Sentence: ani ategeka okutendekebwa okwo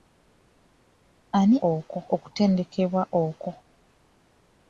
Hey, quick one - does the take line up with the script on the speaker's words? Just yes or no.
no